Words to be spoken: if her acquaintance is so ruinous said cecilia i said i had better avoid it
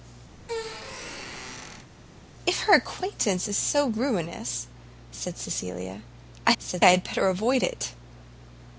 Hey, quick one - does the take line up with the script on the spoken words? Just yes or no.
yes